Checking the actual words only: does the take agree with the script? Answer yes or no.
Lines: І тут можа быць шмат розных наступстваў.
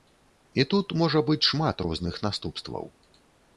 yes